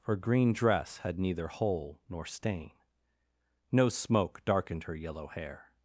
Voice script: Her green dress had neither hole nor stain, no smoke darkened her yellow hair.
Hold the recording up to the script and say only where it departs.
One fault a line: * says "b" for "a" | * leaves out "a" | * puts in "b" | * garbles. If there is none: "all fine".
all fine